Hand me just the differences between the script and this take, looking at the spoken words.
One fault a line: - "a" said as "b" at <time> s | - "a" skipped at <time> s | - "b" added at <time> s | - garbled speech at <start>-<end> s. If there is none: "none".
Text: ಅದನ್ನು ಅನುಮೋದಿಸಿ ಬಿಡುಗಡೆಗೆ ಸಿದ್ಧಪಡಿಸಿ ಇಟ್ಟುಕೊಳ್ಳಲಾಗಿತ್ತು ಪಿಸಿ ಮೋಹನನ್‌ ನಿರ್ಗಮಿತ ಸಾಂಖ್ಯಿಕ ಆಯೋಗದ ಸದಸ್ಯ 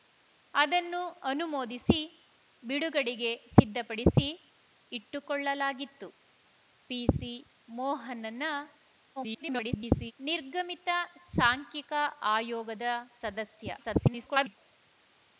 - garbled speech at 9.2-10.1 s
- garbled speech at 13.8-14.6 s